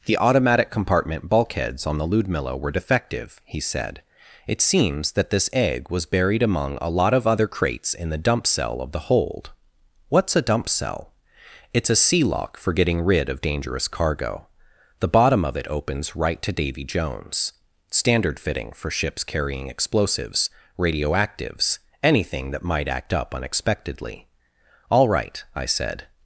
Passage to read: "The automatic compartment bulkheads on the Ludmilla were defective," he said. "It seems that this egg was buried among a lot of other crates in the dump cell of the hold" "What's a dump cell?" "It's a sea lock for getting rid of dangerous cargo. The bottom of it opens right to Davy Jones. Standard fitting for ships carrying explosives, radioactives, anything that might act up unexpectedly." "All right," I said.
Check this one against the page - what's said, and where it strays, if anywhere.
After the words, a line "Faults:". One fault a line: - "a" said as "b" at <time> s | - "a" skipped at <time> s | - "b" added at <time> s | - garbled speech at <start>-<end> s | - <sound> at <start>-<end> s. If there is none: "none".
"The automatic compartment bulkheads on the Ludmilla were defective," he said. "It seems that this egg was buried among a lot of other crates in the dump cell of the hold" "What's a dump cell?" "It's a sea lock for getting rid of dangerous cargo. The bottom of it opens right to Davy Jones. Standard fitting for ships carrying explosives, radioactives, anything that might act up unexpectedly." "All right," I said.
Faults:
none